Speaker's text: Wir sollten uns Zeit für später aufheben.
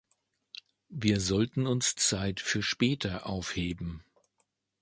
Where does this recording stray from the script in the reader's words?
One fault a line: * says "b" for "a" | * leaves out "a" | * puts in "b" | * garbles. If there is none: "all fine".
all fine